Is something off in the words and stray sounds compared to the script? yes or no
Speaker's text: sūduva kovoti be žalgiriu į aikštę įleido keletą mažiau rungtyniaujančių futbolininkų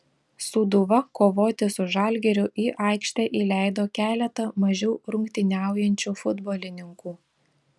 yes